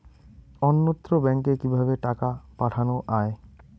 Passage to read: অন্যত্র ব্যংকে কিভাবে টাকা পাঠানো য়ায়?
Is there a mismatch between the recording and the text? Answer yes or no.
no